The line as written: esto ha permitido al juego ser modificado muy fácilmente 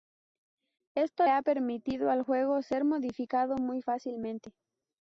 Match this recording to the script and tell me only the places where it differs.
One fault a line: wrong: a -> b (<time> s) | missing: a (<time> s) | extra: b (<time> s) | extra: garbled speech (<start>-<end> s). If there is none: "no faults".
no faults